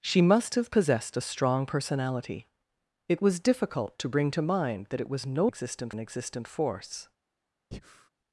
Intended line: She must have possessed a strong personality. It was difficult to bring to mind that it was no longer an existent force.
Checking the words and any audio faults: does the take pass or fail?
fail